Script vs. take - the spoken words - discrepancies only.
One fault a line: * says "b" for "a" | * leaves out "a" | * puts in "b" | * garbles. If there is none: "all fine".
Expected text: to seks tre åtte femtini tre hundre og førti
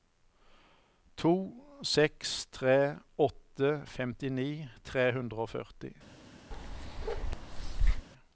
all fine